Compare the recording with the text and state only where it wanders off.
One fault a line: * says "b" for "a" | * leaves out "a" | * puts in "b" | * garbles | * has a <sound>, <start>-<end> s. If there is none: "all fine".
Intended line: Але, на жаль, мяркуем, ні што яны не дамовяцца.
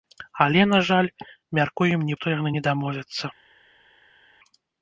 all fine